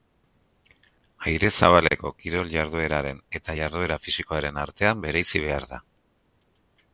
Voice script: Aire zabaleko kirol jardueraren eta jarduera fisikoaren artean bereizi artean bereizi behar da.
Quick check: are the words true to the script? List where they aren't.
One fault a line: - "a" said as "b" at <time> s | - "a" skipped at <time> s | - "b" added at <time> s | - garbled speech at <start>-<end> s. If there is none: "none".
- "artean bereizi" skipped at 5.4 s